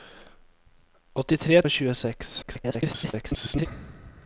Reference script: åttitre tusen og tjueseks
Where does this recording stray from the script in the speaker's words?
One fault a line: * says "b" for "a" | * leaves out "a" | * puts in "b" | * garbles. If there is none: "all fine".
* leaves out "tusen"
* garbles